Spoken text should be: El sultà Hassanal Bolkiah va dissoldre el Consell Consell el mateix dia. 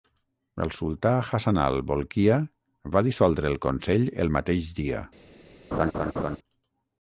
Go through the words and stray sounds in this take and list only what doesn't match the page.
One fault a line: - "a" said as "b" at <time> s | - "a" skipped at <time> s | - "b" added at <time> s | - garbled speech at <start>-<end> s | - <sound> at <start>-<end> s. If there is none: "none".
- "Consell" skipped at 4.1 s
- laugh at 5.7-6.4 s